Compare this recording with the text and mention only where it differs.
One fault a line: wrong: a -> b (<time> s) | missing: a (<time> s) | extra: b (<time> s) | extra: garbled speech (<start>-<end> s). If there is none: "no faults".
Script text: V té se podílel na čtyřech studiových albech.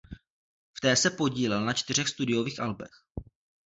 no faults